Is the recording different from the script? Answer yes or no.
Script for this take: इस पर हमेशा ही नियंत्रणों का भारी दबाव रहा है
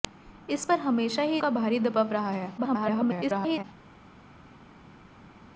yes